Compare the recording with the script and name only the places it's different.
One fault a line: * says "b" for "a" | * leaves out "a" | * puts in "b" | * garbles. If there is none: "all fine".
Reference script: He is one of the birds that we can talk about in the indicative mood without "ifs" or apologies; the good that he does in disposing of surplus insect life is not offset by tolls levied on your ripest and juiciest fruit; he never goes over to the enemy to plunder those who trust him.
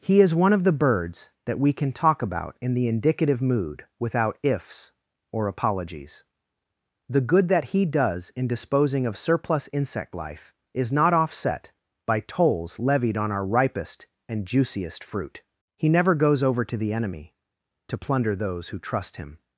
* says "our" for "your"